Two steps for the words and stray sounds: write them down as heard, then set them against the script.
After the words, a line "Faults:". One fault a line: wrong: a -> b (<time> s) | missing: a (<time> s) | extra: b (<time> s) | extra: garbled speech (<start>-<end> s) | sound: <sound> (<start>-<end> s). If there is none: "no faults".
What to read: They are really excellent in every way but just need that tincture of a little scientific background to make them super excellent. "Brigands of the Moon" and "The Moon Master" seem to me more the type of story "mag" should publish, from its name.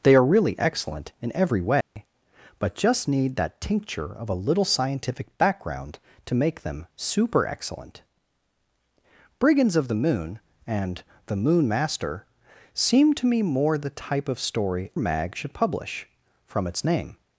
They are really excellent in every way but just need that tincture of a little scientific background to make them super excellent. "Brigands of the Moon" and "The Moon Master" seem to me more the type of story "mag" should publish, from its name.
Faults:
sound: dropout (1.8-2.0 s)